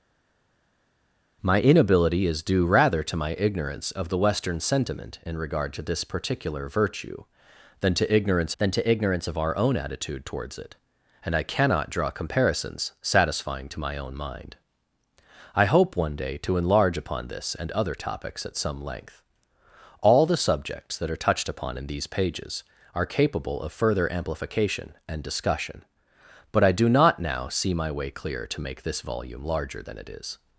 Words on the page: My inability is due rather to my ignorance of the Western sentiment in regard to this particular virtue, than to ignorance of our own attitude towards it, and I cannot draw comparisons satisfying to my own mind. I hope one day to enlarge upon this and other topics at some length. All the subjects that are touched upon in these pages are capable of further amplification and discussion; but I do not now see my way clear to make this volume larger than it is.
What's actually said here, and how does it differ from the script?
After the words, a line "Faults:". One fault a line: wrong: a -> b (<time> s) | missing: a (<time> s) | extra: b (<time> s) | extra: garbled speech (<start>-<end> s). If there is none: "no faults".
My inability is due rather to my ignorance of the Western sentiment in regard to this particular virtue, than to ignorance than to ignorance of our own attitude towards it, and I cannot draw comparisons satisfying to my own mind. I hope one day to enlarge upon this and other topics at some length. All the subjects that are touched upon in these pages are capable of further amplification and discussion; but I do not now see my way clear to make this volume larger than it is.
Faults:
extra: than to ignorance (8.6 s)